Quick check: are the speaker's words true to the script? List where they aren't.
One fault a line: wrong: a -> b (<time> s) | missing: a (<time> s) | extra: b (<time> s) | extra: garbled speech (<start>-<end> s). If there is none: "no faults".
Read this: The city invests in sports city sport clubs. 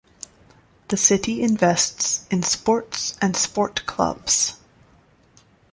wrong: city -> and (3.2 s)